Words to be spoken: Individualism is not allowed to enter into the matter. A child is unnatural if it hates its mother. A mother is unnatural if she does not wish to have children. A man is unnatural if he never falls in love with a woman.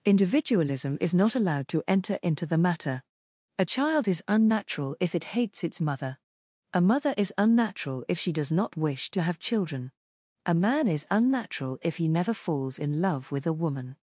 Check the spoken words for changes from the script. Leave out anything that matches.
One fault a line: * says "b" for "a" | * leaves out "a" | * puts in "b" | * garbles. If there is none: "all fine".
all fine